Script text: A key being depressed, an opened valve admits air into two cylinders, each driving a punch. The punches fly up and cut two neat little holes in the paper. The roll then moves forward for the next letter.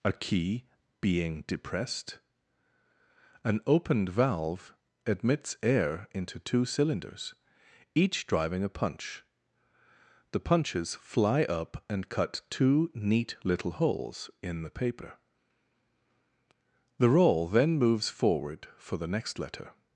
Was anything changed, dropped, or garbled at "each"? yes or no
no